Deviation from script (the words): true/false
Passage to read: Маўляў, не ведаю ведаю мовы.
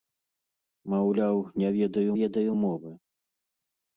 false